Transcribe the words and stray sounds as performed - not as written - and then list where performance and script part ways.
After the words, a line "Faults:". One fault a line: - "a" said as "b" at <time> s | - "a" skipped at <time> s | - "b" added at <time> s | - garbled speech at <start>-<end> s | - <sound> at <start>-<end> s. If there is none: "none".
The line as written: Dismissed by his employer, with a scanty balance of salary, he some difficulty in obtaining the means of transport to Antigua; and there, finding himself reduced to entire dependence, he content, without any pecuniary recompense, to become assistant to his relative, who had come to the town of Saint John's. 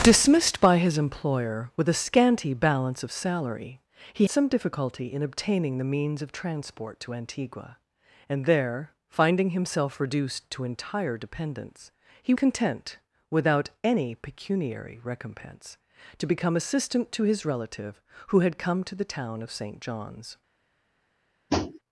Dismissed by his employer, with a scanty balance of salary, he some difficulty in obtaining the means of transport to Antigua; and there, finding himself reduced to entire dependence, he content, without any pecuniary recompense, to become assistant to his relative, who had come to the town of Saint John's.
Faults:
- tap at 21.5-21.8 s